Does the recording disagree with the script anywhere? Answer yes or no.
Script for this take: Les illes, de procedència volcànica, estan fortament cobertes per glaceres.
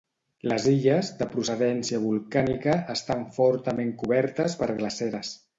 no